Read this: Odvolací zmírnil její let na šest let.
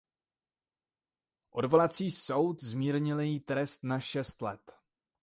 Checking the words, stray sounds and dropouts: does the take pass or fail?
fail